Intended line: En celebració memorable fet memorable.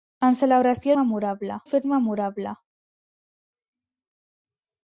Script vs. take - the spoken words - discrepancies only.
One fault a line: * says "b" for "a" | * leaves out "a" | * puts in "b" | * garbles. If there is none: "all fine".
all fine